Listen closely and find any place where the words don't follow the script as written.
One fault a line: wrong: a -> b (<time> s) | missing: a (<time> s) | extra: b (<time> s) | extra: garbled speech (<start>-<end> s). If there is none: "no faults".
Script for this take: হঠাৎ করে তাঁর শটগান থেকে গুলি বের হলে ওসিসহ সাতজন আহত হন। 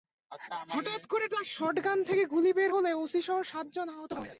no faults